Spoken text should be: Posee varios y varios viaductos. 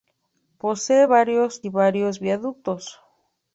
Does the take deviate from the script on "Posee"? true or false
false